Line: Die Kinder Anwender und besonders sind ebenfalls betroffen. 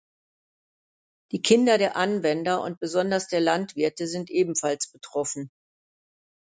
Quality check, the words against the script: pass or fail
fail